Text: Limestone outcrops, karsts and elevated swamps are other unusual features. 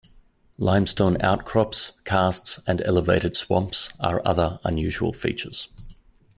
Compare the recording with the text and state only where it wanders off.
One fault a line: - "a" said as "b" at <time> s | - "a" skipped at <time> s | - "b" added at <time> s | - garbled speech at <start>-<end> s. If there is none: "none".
none